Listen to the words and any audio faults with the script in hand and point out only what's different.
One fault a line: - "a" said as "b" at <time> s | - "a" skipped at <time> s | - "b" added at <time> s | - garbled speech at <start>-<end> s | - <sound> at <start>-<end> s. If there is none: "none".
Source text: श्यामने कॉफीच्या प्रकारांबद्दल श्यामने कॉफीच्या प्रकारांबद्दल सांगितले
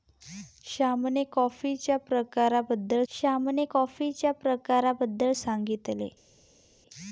none